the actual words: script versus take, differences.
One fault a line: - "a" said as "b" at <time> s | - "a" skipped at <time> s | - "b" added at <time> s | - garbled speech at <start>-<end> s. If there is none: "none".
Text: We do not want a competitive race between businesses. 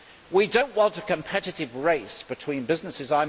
none